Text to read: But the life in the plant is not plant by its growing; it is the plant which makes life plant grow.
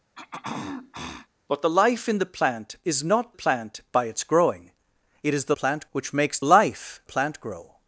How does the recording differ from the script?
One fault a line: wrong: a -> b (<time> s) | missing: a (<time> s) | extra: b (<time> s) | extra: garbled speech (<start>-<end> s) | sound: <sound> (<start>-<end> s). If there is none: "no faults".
sound: throat clearing (0.1-1.3 s)